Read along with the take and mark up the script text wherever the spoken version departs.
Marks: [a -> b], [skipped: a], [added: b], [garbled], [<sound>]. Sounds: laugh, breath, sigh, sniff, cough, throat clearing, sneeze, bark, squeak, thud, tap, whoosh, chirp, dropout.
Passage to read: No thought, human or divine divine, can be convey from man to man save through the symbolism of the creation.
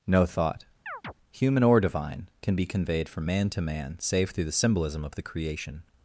No thought, [chirp] human or divine [skipped: divine,] can be [convey -> conveyed] from man to man save through the symbolism of the creation.